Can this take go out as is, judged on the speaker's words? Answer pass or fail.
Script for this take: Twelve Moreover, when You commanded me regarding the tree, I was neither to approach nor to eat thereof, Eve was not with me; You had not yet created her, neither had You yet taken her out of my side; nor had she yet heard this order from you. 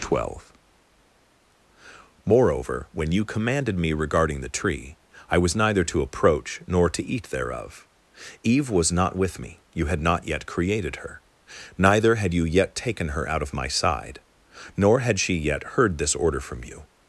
pass